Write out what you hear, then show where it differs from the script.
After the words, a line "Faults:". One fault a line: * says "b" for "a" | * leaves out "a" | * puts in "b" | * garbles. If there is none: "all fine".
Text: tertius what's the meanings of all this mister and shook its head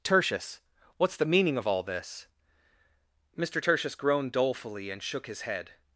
tertius what's the meaning of all this mister tertius groaned dolefully and shook his head
Faults:
* says "meaning" for "meanings"
* puts in "tertius groaned dolefully"
* says "his" for "its"